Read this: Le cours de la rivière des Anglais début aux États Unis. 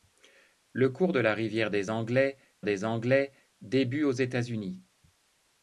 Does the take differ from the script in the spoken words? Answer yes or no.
yes